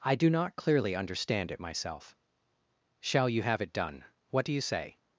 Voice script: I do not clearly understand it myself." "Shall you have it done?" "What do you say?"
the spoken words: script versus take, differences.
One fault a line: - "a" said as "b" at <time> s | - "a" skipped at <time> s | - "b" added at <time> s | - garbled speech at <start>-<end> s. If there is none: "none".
none